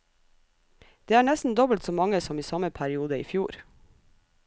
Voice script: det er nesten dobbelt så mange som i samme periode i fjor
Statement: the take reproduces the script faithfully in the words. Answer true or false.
true